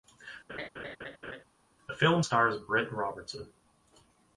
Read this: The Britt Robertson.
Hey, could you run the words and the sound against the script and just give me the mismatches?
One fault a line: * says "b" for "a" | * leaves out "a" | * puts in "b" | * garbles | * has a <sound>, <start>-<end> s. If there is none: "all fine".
* has a laugh, 0.5-1.4 s
* puts in "film stars"